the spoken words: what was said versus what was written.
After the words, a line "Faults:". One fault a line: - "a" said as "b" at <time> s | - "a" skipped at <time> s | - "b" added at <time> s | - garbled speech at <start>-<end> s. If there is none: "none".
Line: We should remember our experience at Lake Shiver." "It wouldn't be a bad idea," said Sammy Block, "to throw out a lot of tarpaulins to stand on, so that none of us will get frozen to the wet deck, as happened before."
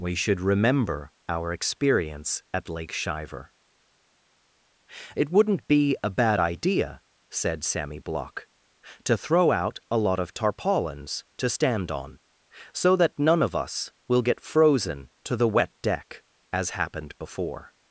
We should remember our experience at Lake Shiver." "It wouldn't be a bad idea," said Sammy Block, "to throw out a lot of tarpaulins to stand on, so that none of us will get frozen to the wet deck, as happened before."
Faults:
none